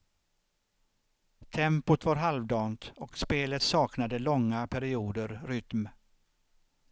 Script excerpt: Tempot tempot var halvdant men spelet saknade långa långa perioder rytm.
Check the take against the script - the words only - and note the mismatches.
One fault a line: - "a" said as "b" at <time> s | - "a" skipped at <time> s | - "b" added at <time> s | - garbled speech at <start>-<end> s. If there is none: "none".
- "tempot" skipped at 2.0 s
- "men" said as "och" at 3.0 s
- "långa" skipped at 4.7 s